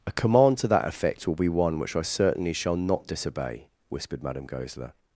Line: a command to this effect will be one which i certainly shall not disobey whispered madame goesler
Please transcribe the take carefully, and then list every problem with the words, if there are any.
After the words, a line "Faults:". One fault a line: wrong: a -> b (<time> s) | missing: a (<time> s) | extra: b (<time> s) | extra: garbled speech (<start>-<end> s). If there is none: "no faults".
a command to that effect will be one which i certainly shall not disobey whispered madame goesler
Faults:
wrong: this -> that (0.7 s)